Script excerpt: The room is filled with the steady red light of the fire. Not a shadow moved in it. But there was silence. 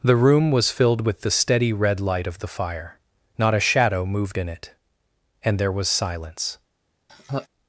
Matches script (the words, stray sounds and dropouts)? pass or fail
fail